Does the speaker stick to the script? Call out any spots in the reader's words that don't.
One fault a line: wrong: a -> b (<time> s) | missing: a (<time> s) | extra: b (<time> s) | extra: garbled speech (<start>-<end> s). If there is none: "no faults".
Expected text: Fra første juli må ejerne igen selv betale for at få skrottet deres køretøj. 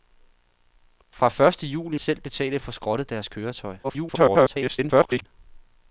missing: må ejerne igen (2.0 s)
missing: for (2.6 s)
extra: garbled speech (3.8-5.3 s)